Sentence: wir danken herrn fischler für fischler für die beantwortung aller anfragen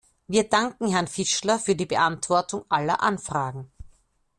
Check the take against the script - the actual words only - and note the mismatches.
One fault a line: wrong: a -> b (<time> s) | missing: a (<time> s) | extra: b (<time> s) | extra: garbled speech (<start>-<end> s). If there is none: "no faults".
missing: fischler für (1.8 s)